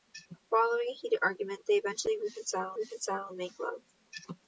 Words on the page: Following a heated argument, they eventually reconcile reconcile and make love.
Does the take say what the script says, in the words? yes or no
yes